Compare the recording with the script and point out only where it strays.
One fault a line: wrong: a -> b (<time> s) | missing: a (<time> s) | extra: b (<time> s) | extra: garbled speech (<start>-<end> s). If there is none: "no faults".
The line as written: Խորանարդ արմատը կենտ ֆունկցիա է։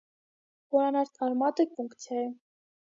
missing: կենտ (1.6 s)